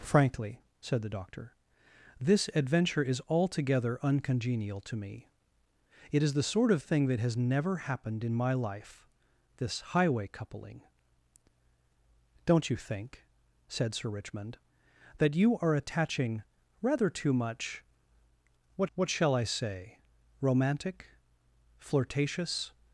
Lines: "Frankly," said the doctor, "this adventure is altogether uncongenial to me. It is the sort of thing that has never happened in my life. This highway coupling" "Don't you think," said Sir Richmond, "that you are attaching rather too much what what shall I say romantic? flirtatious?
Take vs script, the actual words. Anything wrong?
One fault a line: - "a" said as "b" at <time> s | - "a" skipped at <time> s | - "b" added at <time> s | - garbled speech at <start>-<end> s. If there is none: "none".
none